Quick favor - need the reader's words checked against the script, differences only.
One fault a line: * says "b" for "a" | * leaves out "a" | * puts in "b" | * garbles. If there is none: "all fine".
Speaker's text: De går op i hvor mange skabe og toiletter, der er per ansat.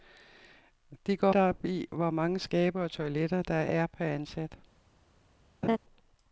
all fine